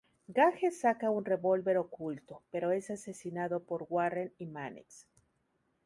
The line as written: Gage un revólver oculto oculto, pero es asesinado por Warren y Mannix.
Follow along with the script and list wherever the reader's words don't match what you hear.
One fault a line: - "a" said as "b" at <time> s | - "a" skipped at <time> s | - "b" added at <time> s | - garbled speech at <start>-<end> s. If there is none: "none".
- "saca" added at 0.7 s
- "oculto" skipped at 2.4 s